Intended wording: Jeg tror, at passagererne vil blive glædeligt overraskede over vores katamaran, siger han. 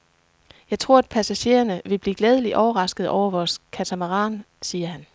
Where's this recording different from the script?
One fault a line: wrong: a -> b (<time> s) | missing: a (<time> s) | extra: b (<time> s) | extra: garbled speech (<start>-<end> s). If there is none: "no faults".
no faults